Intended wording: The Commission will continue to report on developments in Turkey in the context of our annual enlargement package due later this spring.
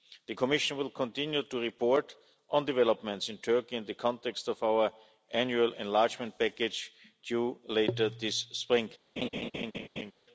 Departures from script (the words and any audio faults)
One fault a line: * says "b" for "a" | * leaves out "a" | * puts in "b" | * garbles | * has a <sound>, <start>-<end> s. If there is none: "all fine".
* has a laugh, 9.2-10.1 s